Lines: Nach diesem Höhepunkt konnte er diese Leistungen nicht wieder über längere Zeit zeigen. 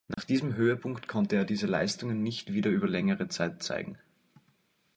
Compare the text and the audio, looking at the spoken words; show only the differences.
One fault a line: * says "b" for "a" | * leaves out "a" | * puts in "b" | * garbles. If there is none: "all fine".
all fine